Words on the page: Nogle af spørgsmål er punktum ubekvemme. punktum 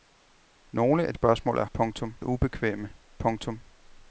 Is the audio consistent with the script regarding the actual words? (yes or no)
yes